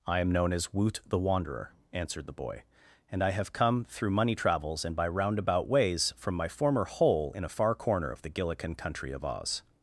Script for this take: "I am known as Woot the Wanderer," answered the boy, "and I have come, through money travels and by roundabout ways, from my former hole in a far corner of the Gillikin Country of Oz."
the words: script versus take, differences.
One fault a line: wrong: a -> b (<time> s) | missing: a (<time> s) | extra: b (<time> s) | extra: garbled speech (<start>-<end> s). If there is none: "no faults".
no faults